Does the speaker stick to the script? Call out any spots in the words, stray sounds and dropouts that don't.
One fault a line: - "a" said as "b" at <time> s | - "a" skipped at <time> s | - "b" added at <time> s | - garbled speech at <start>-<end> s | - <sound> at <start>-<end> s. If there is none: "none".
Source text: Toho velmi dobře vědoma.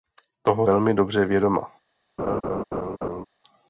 - laugh at 2.2-3.3 s